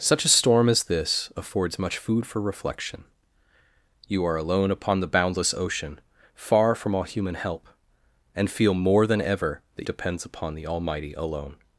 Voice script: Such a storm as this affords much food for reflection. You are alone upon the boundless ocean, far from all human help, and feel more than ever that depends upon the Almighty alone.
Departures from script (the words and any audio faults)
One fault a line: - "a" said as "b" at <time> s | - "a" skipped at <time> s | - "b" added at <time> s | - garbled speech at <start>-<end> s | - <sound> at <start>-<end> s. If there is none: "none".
none